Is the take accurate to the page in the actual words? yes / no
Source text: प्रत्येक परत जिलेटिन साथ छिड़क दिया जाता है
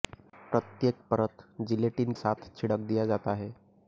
yes